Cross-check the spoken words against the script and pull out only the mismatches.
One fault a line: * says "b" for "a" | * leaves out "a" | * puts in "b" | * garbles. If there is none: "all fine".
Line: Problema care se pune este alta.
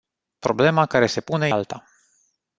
* leaves out "este"